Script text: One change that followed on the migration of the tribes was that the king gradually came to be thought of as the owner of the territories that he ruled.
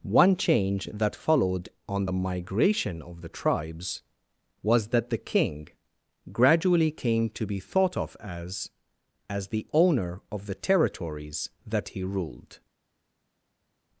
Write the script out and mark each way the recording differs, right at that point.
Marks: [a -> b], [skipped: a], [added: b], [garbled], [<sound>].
One change that followed on the migration of the tribes was that the king gradually came to be thought of as [added: as] the owner of the territories that he ruled.